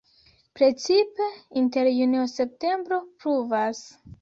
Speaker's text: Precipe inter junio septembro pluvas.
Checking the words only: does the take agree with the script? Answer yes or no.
yes